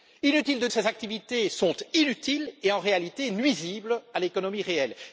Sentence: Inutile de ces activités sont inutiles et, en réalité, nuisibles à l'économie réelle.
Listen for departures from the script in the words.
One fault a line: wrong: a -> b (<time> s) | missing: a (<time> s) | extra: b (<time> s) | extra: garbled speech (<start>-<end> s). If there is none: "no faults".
no faults